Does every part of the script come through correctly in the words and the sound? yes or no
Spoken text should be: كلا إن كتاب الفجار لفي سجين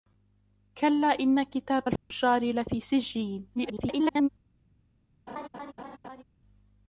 no